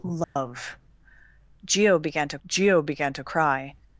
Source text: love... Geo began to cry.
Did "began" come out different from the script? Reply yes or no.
no